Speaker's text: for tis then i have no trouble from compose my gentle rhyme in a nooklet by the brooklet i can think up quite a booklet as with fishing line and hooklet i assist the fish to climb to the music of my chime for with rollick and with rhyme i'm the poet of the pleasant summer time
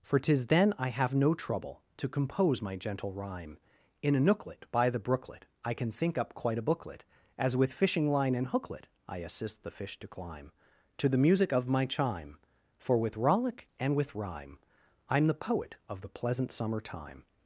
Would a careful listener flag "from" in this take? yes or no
yes